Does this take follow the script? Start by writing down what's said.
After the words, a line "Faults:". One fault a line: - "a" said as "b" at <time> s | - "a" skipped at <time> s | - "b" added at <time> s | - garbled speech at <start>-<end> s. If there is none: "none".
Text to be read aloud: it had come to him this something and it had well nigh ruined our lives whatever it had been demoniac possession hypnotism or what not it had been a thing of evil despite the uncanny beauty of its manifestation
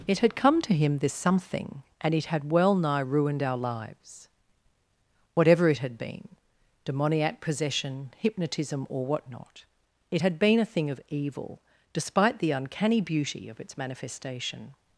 it had come to him this something and it had well nigh ruined our lives whatever it had been demoniac possession hypnotism or what not it had been a thing of evil despite the uncanny beauty of its manifestation
Faults:
none